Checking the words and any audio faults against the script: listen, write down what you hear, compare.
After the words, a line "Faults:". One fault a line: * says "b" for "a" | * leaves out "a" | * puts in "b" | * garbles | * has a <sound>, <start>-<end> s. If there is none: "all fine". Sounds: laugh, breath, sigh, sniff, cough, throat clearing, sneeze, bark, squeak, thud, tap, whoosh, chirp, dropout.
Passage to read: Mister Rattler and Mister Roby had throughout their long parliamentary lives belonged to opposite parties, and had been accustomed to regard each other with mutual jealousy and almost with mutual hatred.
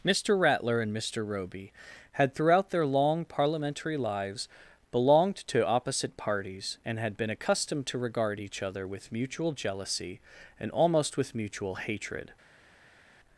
Mister Rattler and Mister Roby had throughout their long parliamentary lives belonged to opposite parties, and had been accustomed to regard each other with mutual jealousy and almost with mutual hatred.
Faults:
all fine